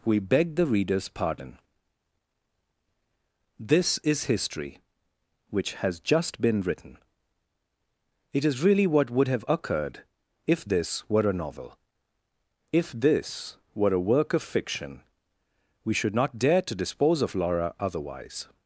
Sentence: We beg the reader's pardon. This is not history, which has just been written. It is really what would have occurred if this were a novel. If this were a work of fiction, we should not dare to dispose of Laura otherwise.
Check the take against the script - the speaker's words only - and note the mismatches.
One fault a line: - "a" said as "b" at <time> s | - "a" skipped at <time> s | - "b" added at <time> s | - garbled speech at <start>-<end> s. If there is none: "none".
- "not" skipped at 4.2 s